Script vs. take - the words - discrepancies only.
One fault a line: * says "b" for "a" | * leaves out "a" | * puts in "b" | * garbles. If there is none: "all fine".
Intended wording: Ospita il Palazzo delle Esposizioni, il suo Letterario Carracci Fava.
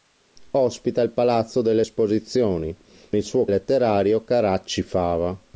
all fine